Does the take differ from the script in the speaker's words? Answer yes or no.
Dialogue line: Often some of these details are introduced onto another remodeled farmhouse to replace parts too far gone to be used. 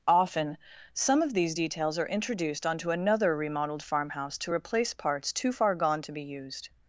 no